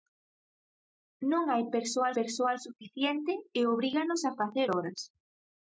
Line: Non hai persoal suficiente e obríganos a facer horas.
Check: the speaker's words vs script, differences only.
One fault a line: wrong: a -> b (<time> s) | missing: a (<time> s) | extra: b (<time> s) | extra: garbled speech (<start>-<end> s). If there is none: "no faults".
extra: persoal (2.2 s)